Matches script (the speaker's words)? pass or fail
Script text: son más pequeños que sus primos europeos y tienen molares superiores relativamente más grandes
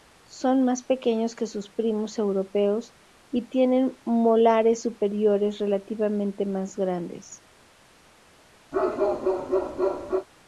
pass